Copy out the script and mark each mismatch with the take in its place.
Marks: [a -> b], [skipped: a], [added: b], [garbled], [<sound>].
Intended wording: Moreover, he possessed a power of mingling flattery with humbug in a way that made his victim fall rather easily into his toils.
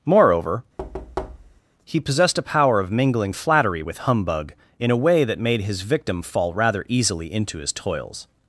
Moreover, [thud] he possessed a power of mingling flattery with humbug in a way that made his victim fall rather easily into his toils.